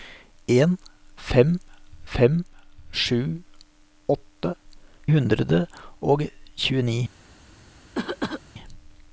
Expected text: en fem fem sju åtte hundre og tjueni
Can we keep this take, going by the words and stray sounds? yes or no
no